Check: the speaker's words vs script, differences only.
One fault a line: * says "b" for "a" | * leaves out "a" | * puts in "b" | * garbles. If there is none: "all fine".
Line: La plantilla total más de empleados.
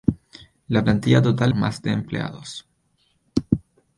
all fine